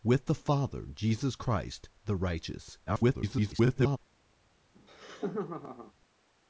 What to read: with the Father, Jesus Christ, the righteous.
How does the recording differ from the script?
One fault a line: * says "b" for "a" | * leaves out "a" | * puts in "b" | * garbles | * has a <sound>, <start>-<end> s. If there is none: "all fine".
* garbles
* has a laugh, 4.8-5.9 s